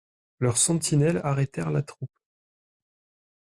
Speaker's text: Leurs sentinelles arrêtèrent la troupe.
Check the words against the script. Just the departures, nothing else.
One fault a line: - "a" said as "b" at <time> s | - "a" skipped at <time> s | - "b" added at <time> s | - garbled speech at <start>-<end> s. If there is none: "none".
none